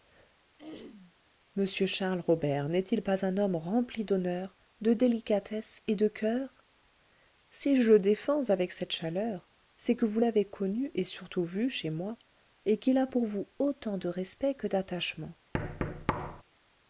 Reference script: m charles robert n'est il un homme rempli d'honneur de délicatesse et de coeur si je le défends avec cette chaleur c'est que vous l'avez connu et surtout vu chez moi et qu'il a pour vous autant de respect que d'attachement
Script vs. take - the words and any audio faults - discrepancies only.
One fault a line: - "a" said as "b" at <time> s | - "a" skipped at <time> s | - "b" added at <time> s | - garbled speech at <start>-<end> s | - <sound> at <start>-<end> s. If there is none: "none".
- throat clearing at 0.6-1.1 s
- "pas" added at 3.0 s
- thud at 15.5-16.4 s